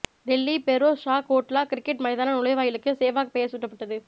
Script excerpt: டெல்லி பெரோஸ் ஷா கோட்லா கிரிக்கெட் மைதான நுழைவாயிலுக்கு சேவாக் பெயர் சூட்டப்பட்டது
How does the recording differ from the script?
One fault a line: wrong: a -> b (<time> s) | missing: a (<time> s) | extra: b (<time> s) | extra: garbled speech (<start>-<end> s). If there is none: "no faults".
no faults